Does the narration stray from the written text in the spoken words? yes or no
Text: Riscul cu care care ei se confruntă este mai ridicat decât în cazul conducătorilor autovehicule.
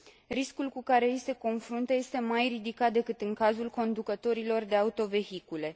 yes